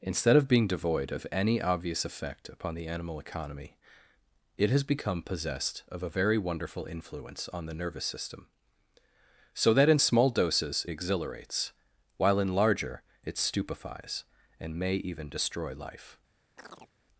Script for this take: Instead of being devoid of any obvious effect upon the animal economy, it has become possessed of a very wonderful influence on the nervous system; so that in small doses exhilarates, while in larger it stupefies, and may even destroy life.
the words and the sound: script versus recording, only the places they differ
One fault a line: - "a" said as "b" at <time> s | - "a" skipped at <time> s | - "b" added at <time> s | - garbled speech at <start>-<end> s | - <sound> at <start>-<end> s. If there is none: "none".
- chirp at 16.6-16.9 s